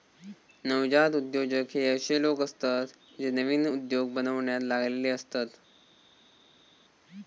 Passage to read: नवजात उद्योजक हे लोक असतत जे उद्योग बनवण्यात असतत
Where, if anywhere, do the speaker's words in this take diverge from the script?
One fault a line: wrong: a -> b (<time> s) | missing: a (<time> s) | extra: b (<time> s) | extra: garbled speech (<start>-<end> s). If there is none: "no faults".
extra: अशे (1.9 s)
extra: नवीन (3.3 s)
extra: लागलेले (4.6 s)